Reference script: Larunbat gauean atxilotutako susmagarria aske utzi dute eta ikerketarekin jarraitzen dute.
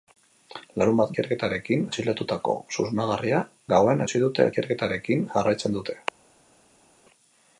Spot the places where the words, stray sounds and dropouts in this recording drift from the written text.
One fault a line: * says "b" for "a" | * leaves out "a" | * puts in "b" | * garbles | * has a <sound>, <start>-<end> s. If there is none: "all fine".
* says "ikerketarekin" for "gauean"
* says "gauean" for "aske"
* leaves out "eta"